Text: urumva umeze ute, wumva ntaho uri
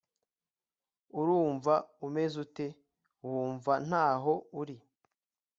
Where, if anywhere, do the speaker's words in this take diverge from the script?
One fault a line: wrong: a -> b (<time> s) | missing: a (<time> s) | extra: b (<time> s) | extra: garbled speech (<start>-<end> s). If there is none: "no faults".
no faults